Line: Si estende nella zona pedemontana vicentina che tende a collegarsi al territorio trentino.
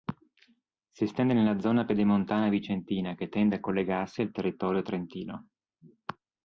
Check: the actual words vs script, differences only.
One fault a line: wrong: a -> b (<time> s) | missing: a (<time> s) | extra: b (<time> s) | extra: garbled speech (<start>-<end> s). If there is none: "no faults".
no faults